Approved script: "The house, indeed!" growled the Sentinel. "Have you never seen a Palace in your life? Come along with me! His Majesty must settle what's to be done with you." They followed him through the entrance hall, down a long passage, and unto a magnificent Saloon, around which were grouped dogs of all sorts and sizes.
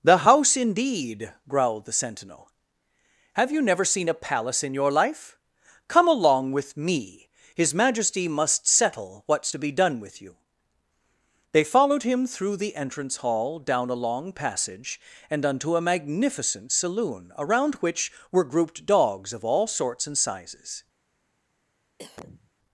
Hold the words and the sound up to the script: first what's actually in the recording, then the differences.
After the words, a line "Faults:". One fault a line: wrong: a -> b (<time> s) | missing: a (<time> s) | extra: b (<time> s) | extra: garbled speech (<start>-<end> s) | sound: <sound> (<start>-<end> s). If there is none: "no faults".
"The house, indeed!" growled the Sentinel. "Have you never seen a Palace in your life? Come along with me! His Majesty must settle what's to be done with you." They followed him through the entrance hall, down a long passage, and unto a magnificent Saloon, around which were grouped dogs of all sorts and sizes.
Faults:
sound: cough (22.0-22.5 s)